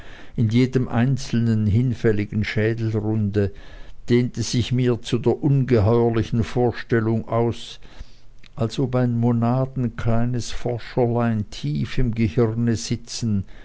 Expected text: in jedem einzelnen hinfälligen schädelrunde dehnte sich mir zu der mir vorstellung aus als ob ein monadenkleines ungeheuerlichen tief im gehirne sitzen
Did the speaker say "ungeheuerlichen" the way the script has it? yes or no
no